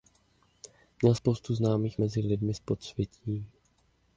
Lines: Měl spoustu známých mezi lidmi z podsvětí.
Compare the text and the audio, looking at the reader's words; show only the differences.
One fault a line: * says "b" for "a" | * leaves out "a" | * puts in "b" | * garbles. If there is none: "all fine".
all fine